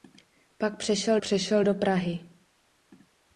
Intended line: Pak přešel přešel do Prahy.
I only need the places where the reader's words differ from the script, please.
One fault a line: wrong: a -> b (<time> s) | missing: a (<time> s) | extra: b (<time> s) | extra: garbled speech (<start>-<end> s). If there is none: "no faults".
no faults